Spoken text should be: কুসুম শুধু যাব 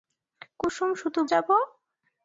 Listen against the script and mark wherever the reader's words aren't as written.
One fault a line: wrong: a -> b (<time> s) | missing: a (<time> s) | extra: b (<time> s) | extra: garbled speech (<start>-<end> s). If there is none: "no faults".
no faults